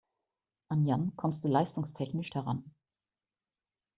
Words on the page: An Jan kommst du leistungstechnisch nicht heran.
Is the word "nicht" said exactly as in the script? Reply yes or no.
no